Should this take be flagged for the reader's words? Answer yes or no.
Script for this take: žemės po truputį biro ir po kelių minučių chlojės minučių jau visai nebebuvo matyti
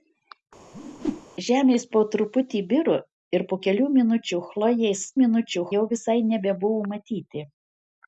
no